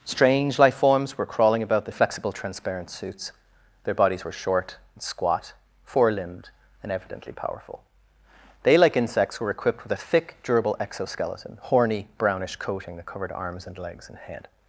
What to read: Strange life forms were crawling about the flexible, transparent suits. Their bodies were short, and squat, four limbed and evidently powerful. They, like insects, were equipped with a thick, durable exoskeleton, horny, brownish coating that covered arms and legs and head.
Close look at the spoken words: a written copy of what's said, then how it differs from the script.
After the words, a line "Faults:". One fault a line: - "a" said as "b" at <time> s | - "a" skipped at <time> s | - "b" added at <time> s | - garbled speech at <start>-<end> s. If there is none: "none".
Strange life forms were crawling about the flexible, transparent suits. Their bodies were short, and squat, four limbed and evidently powerful. They, like insects, were equipped with a thick, durable exoskeleton, horny, brownish coating that covered arms and legs and head.
Faults:
none